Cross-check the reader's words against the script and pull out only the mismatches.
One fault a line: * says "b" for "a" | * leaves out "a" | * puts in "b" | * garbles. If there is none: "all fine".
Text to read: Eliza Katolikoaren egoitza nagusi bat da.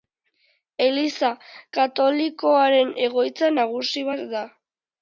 all fine